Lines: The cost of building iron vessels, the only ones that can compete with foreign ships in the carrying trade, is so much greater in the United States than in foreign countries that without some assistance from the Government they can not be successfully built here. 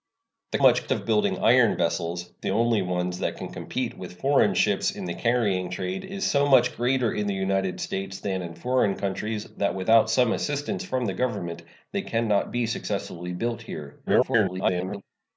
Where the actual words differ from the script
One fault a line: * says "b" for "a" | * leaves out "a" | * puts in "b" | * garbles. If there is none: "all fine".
* says "much" for "cost"
* garbles